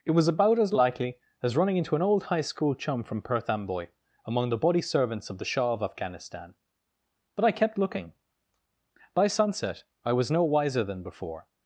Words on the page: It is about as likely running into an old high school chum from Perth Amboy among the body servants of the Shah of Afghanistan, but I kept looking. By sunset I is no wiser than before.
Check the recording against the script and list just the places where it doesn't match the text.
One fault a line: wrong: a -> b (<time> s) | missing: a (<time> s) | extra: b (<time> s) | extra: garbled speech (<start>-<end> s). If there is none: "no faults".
wrong: is -> was (0.1 s)
extra: as (1.4 s)
wrong: is -> was (10.1 s)